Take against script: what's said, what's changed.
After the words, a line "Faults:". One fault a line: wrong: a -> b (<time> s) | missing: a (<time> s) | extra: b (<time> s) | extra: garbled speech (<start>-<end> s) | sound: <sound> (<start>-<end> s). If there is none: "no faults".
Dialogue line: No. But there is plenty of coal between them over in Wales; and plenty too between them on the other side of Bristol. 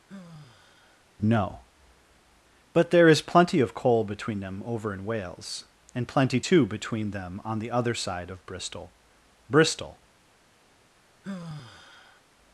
No. But there is plenty of coal between them over in Wales; and plenty too between them on the other side of Bristol Bristol.
Faults:
sound: sigh (0.1-1.1 s)
extra: Bristol (9.5 s)
sound: sigh (11.2-12.2 s)